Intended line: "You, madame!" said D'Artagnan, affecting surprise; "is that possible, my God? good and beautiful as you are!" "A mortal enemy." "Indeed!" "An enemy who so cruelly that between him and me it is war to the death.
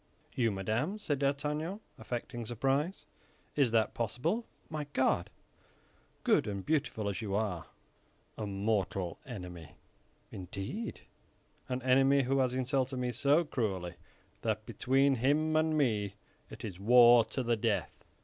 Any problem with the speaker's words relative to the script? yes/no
yes